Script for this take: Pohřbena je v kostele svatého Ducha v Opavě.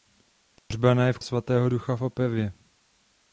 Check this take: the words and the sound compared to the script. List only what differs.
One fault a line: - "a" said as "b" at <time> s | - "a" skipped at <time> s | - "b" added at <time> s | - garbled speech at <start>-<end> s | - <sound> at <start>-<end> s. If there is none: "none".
- dropout at 0.6-0.7 s
- "kostele" skipped at 1.2 s